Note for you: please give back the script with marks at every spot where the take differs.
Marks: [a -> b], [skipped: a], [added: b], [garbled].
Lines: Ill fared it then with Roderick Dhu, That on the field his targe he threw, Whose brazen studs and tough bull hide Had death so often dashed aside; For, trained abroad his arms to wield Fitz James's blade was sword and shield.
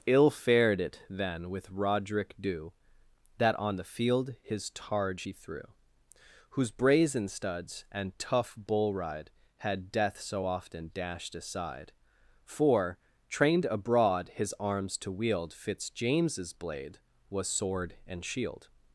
Ill fared it then with Roderick Dhu, That on the field his targe he threw, Whose brazen studs and tough bull [hide -> ride] Had death so often dashed aside; For, trained abroad his arms to wield Fitz James's blade was sword and shield.